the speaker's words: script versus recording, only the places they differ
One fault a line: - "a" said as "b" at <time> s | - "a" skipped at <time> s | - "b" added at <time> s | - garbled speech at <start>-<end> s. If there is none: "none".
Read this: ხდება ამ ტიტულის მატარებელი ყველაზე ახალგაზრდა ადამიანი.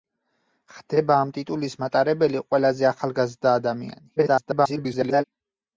- garbled speech at 4.2-5.2 s